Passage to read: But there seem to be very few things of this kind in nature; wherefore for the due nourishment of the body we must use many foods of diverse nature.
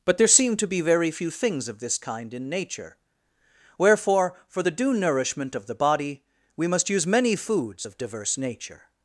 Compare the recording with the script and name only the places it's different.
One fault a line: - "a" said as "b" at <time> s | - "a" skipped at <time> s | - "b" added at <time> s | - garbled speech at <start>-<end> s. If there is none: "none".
none